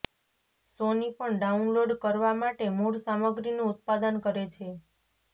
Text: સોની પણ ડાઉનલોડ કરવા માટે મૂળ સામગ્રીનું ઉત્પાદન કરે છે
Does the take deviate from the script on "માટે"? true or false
false